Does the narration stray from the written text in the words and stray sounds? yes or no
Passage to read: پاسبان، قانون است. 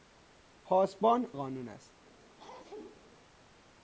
yes